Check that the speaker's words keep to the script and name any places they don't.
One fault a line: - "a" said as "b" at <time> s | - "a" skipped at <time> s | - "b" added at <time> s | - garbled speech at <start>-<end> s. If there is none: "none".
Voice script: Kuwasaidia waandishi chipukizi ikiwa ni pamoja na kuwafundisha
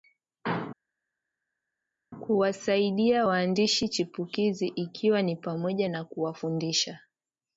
none